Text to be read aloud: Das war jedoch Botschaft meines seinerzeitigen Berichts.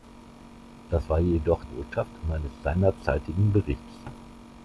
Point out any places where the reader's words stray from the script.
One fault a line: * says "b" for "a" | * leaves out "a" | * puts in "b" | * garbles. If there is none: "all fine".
all fine